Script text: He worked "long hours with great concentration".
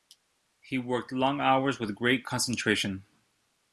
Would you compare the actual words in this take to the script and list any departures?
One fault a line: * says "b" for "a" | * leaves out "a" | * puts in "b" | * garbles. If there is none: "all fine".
all fine